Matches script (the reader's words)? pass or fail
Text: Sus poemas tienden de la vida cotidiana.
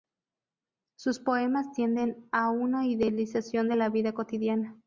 fail